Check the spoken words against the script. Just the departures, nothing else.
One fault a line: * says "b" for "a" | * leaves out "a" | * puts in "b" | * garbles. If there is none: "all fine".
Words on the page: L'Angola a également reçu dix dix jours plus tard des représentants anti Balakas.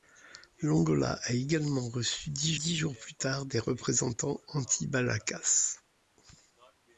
all fine